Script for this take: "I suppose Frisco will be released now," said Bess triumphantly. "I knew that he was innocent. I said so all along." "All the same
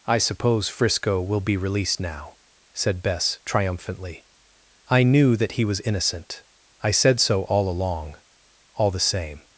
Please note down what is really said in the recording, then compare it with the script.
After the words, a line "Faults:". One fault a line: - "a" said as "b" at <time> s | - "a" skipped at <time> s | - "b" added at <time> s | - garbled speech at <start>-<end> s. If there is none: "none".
"I suppose Frisco will be released now," said Bess triumphantly. "I knew that he was innocent. I said so all along." "All the same
Faults:
none